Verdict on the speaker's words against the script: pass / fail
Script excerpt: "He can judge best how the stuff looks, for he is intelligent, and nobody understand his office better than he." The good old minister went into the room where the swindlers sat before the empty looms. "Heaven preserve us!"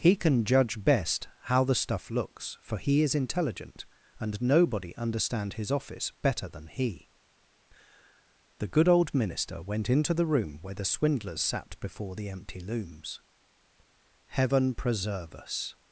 pass